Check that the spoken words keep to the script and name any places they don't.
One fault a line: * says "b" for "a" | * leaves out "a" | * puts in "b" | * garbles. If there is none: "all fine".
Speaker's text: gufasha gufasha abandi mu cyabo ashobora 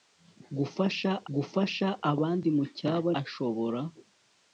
all fine